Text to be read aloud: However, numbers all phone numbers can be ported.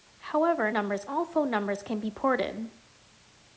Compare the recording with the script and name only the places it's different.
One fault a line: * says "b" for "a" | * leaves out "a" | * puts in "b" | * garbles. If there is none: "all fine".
all fine